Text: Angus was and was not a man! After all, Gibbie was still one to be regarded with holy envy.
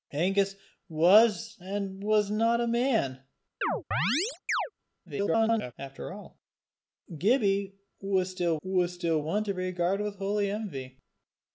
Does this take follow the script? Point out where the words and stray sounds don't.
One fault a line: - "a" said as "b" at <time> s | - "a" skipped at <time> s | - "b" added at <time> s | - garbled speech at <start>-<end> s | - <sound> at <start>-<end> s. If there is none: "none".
- chirp at 3.6-4.7 s
- garbled speech at 5.1-5.7 s
- "was still" added at 8.6 s